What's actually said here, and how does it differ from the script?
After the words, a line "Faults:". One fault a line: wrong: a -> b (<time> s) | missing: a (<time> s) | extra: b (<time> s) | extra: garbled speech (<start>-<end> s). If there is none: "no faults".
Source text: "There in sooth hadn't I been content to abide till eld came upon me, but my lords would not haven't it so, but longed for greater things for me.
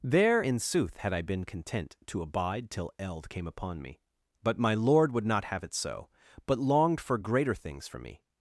"There in sooth had I been content to abide till eld came upon me, but my lord would not have it so, but longed for greater things for me.
Faults:
wrong: hadn't -> had (1.0 s)
wrong: lords -> lord (4.7 s)
wrong: haven't -> have (5.4 s)